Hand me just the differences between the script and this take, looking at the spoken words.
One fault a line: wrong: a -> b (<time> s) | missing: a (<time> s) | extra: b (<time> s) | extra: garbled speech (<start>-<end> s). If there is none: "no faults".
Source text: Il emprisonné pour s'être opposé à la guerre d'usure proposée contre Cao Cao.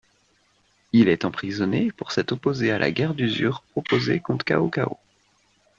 extra: est (1.1 s)